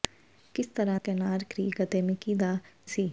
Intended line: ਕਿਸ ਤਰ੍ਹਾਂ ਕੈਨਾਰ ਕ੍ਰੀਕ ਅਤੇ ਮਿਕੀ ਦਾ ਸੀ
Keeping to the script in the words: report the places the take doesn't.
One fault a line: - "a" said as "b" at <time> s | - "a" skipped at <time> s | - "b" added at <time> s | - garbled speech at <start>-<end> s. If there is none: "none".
none